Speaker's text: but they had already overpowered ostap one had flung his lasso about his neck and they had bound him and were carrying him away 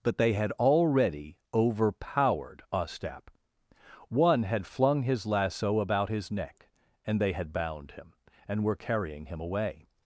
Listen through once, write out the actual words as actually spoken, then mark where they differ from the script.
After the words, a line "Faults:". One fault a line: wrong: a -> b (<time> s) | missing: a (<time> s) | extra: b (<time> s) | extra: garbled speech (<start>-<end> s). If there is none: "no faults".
but they had already overpowered ostap one had flung his lasso about his neck and they had bound him and were carrying him away
Faults:
no faults